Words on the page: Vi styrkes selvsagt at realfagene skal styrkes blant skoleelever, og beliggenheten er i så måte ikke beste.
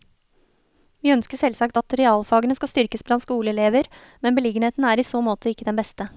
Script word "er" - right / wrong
right